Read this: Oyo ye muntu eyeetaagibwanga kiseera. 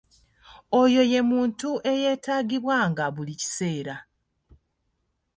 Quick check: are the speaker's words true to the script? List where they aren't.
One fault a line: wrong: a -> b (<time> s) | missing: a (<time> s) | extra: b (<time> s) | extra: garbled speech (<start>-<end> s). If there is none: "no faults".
extra: buli (3.1 s)